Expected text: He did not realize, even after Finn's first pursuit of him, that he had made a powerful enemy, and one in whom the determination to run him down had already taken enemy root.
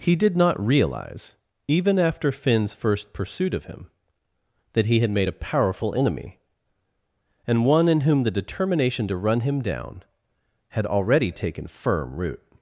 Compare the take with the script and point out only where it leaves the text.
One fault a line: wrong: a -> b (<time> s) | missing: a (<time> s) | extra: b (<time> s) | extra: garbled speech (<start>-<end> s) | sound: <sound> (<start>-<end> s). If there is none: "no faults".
wrong: enemy -> firm (11.7 s)